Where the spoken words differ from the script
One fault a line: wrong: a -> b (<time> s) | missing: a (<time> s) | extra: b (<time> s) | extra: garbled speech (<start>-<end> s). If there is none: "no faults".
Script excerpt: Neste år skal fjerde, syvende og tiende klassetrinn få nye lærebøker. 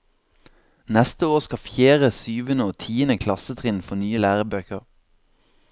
no faults